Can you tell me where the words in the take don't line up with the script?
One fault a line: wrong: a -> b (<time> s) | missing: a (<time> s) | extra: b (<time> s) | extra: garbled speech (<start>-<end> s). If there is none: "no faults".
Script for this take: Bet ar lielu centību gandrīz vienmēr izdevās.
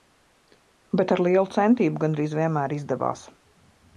no faults